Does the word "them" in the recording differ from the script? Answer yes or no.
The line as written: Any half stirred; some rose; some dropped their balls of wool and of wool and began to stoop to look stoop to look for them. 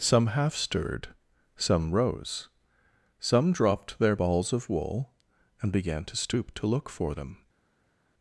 no